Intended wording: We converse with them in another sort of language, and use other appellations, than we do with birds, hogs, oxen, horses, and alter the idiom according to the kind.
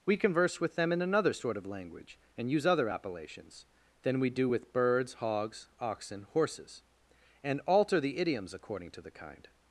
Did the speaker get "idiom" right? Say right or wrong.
wrong